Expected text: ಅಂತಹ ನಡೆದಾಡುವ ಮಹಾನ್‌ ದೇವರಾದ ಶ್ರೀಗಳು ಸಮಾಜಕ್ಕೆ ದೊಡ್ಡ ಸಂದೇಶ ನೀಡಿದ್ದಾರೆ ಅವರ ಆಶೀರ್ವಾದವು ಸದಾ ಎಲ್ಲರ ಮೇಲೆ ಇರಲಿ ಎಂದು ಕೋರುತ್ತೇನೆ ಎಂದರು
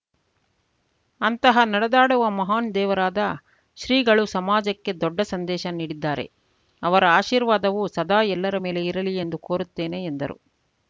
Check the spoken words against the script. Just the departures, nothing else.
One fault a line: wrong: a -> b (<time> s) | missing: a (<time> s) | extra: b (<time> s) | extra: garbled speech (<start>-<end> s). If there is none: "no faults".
no faults